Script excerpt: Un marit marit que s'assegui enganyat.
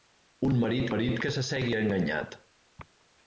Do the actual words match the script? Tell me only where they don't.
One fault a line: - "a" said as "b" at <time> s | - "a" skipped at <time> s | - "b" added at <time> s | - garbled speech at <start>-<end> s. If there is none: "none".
none